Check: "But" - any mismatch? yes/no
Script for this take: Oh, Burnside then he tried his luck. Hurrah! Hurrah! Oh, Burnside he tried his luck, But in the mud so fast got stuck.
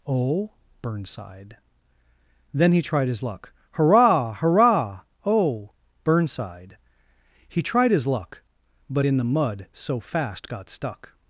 no